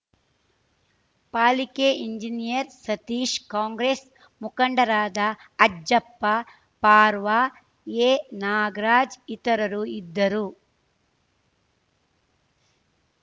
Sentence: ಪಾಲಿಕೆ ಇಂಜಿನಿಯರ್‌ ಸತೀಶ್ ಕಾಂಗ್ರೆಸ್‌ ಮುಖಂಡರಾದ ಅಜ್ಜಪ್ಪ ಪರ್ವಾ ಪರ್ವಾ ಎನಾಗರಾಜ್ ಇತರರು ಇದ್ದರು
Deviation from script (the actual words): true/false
true